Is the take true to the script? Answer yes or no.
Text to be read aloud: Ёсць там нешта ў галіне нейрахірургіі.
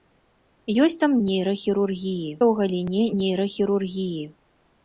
no